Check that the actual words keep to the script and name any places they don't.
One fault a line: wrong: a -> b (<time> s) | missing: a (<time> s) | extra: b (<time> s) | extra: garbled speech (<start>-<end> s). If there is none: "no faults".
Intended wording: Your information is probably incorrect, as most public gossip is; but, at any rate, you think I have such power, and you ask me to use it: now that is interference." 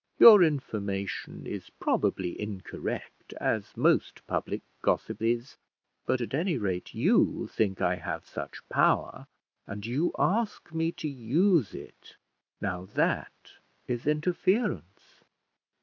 no faults